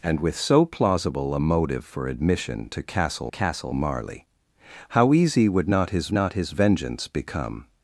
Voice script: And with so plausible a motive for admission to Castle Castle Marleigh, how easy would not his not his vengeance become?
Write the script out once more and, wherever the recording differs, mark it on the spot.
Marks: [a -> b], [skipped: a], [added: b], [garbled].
And with so plausible a motive for admission to Castle Castle Marleigh, how easy would not his not his vengeance become?